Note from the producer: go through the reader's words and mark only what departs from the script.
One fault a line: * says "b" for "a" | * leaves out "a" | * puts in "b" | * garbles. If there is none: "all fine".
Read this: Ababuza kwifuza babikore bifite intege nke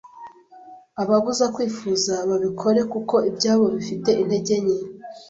* puts in "kuko ibyabo"